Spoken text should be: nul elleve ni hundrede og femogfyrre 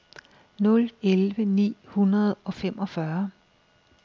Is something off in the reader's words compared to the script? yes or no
no